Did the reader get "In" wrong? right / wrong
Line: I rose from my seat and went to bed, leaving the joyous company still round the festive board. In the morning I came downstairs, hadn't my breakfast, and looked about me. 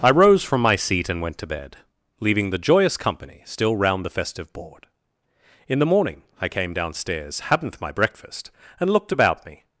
right